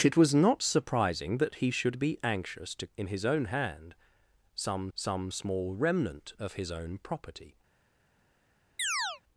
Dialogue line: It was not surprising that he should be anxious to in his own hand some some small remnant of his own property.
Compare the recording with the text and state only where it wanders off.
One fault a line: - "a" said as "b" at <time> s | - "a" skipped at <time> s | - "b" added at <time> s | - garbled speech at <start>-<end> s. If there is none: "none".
none